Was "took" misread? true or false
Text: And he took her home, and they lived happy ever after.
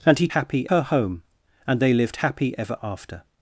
true